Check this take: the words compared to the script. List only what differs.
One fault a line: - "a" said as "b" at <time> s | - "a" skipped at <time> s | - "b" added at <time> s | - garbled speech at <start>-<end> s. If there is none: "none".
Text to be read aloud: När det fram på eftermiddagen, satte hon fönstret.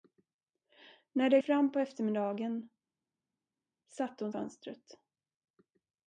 none